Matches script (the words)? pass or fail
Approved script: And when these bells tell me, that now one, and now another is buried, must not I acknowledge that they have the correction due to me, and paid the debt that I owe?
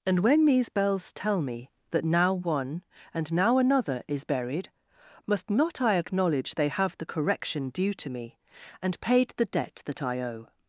fail